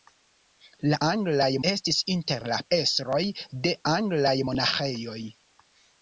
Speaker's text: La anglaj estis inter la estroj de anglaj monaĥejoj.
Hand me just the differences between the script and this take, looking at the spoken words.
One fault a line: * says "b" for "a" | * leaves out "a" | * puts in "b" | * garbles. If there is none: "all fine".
all fine